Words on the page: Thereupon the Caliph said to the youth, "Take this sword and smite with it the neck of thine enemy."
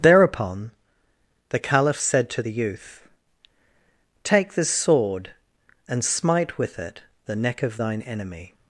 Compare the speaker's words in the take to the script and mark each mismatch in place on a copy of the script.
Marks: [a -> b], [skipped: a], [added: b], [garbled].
Thereupon the Caliph said to the youth, "Take this sword and smite with it the neck of thine enemy."